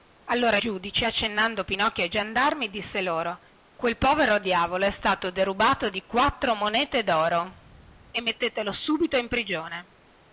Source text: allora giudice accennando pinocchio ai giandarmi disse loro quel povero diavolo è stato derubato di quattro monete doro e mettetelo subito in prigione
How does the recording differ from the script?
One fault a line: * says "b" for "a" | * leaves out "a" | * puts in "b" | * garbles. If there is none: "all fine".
all fine